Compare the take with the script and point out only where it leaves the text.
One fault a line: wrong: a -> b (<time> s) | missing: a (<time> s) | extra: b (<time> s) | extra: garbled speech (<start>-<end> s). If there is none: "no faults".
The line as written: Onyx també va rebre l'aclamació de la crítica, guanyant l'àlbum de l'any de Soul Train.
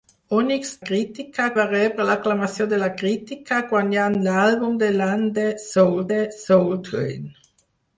wrong: també -> crítica (0.9 s)
extra: de Soul (6.1 s)